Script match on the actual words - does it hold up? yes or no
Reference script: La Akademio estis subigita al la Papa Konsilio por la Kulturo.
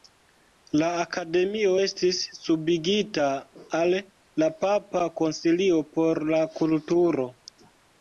yes